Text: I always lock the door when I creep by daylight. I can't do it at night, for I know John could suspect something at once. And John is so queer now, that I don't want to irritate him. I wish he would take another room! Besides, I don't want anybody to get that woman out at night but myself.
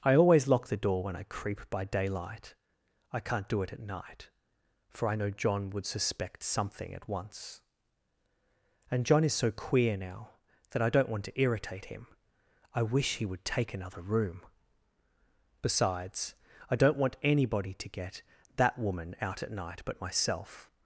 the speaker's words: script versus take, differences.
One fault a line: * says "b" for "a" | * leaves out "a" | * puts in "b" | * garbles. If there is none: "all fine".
* says "would" for "could"